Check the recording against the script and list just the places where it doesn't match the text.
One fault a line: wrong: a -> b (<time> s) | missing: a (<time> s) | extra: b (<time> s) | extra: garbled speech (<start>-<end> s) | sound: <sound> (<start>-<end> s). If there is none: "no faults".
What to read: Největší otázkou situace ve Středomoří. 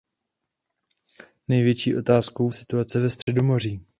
sound: dropout (3.2-3.3 s)